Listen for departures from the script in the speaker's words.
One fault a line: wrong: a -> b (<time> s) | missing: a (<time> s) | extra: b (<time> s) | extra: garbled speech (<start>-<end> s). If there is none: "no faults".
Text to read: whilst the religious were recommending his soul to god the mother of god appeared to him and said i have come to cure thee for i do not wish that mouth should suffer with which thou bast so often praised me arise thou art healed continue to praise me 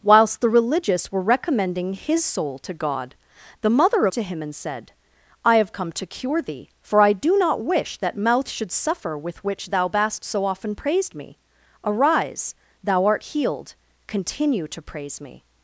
missing: of god appeared (4.1 s)